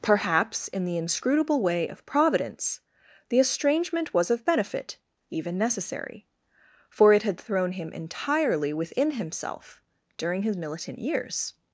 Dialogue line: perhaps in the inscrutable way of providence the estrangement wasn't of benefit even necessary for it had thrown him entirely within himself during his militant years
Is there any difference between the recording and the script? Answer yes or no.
yes